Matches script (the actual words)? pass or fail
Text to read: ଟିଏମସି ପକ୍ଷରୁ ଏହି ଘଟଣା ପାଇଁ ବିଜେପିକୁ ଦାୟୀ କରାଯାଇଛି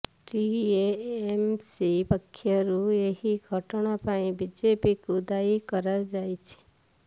pass